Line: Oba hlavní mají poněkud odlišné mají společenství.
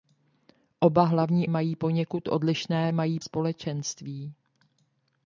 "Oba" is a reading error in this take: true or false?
false